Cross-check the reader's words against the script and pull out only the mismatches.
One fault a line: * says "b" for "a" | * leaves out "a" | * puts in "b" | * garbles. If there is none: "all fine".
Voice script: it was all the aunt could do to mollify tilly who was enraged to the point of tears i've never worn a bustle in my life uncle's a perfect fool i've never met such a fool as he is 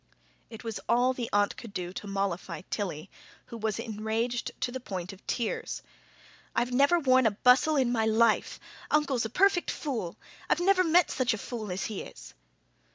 all fine